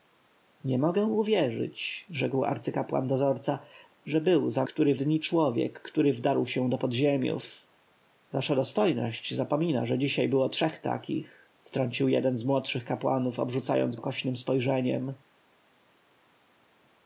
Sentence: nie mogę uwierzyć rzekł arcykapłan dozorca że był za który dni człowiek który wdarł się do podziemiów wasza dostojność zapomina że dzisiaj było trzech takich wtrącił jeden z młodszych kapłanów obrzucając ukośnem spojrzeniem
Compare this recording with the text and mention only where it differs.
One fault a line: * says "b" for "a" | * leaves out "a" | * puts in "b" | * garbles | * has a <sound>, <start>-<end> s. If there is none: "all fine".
all fine